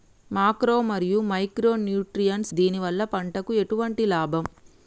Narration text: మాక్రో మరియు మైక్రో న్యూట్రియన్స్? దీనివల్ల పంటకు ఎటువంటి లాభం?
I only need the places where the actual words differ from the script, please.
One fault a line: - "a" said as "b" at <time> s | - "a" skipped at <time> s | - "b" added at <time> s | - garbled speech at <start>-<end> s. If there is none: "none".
none